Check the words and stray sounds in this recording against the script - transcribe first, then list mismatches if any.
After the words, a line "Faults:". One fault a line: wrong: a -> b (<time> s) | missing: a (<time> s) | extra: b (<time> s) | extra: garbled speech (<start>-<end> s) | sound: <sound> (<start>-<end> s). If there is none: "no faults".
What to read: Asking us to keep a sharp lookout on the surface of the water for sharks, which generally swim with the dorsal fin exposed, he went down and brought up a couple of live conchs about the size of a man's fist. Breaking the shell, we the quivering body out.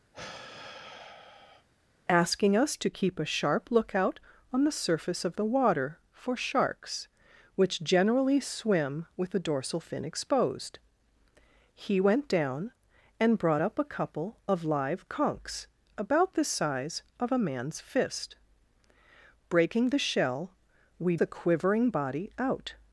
Asking us to keep a sharp lookout on the surface of the water for sharks, which generally swim with the dorsal fin exposed, he went down and brought up a couple of live conchs about the size of a man's fist. Breaking the shell, we the quivering body out.
Faults:
sound: sigh (0.1-1.7 s)